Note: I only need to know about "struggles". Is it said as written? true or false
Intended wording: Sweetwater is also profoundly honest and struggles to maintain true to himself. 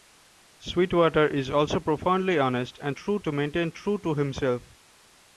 false